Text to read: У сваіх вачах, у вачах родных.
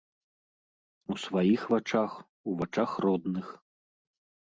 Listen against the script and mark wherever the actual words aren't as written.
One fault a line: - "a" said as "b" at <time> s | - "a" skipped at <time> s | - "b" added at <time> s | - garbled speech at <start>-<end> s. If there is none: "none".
none